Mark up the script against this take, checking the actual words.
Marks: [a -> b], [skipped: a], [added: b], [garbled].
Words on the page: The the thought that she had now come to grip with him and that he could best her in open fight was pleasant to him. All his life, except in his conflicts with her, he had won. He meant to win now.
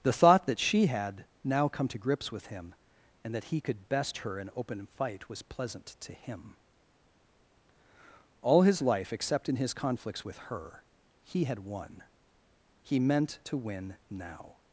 The [skipped: the] thought that she had now come to [grip -> grips] with him and that he could best her in open fight was pleasant to him. All his life, except in his conflicts with her, he had won. He meant to win now.